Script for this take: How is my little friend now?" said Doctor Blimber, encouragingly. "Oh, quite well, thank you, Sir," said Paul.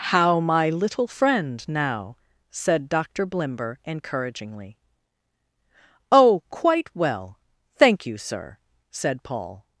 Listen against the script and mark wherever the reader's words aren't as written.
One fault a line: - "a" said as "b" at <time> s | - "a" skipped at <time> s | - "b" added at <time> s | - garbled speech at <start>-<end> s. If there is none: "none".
- "is" skipped at 0.4 s